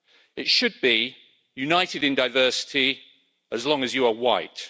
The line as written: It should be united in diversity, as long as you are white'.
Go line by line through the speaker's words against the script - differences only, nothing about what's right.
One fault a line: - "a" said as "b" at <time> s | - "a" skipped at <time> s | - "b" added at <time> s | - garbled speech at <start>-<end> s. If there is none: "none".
none